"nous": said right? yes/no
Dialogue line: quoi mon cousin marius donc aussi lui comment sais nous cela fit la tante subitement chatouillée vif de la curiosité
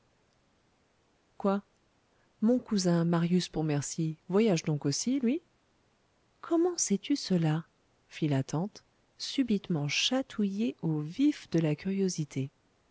no